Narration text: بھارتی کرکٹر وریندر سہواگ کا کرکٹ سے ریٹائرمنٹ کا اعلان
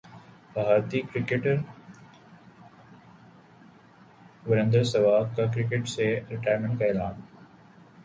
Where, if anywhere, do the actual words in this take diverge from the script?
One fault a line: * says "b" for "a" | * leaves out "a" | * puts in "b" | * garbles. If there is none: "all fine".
all fine